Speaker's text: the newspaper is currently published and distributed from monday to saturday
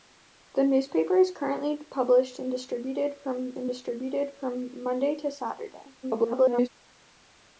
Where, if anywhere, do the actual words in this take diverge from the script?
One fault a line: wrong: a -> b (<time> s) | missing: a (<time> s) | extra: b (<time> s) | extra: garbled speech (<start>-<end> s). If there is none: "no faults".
extra: and distributed from (3.6 s)
extra: garbled speech (6.0-6.7 s)